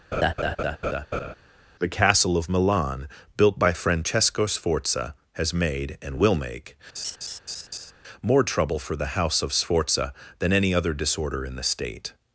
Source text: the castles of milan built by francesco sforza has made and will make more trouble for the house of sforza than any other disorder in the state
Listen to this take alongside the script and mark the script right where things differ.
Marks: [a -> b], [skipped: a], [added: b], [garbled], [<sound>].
[laugh] the [castles -> castle] of milan built by francesco sforza has made and will make [laugh] more trouble for the house of sforza than any other disorder in the state